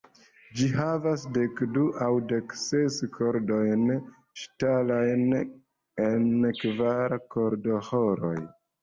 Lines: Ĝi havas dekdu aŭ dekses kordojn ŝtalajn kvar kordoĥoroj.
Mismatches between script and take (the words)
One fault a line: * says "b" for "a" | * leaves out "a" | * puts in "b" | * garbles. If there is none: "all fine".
* puts in "en"